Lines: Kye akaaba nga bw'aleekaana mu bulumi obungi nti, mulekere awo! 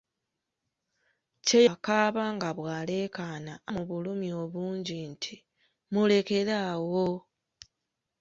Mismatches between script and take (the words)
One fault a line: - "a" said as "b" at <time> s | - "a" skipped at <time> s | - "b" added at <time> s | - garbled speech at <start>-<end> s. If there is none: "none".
none